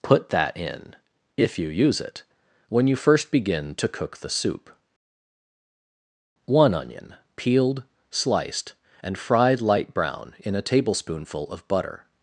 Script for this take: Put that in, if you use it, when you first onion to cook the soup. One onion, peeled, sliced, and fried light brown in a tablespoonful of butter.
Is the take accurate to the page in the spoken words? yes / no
no